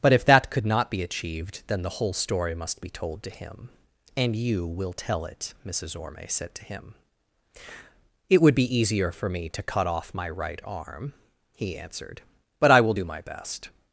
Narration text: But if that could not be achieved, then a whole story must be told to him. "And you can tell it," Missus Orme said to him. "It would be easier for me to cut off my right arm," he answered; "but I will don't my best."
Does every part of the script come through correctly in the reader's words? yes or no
no